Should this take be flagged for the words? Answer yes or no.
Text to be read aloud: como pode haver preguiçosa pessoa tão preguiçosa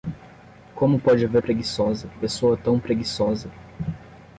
no